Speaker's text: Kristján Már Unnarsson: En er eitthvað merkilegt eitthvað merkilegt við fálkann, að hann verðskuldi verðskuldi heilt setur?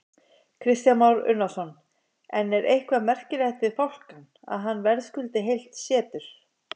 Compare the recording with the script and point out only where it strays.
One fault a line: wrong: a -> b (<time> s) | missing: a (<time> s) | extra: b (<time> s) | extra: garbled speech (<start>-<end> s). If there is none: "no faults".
missing: eitthvað merkilegt (3.6 s)
missing: verðskuldi (5.4 s)